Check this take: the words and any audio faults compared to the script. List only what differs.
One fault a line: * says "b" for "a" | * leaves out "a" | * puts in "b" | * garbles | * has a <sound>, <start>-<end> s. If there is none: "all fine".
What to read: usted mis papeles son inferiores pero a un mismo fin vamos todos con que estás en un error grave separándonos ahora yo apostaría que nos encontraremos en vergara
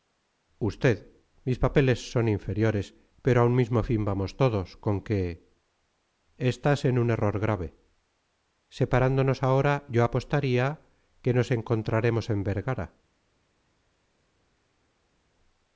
all fine